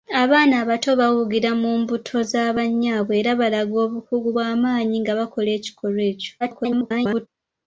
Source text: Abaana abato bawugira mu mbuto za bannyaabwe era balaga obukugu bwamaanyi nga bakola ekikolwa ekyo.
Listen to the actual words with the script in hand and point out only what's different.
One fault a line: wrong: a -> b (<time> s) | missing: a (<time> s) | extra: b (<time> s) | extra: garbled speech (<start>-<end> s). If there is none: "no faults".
extra: garbled speech (6.4-7.3 s)